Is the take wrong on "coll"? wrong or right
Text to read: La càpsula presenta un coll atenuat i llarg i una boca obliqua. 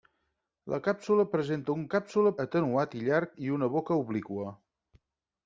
wrong